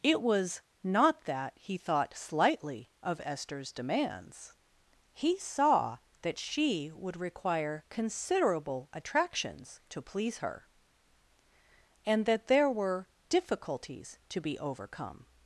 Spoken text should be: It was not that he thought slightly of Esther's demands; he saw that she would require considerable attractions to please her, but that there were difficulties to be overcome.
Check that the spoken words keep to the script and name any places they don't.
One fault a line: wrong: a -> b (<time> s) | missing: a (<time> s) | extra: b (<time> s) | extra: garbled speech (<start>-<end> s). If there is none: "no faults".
wrong: but -> and (12.1 s)